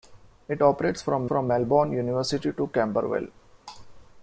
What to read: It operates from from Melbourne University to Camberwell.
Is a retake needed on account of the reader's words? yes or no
no